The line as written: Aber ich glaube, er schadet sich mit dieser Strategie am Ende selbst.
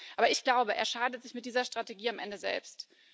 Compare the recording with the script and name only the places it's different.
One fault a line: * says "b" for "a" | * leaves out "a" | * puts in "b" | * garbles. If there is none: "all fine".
all fine